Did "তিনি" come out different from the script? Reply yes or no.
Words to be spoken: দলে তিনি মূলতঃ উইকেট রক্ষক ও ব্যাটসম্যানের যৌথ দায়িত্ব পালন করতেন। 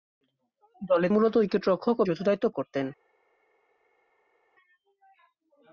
yes